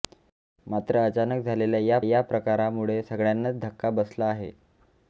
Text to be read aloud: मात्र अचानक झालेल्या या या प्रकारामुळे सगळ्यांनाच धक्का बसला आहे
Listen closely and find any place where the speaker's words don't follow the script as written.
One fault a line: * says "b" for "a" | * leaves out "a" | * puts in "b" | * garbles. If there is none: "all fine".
all fine